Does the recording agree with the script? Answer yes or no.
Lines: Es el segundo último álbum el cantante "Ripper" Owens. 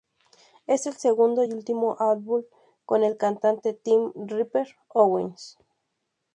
no